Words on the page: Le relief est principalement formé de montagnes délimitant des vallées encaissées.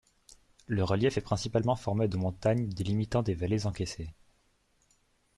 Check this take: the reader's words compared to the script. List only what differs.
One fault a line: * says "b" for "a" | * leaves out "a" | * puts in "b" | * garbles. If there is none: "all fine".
all fine